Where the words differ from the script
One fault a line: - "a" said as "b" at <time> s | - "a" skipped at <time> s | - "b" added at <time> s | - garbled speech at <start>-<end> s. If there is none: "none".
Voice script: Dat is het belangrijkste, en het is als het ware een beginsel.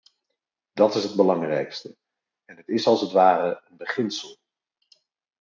none